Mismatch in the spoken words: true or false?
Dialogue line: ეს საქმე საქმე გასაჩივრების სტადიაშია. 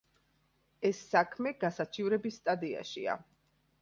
true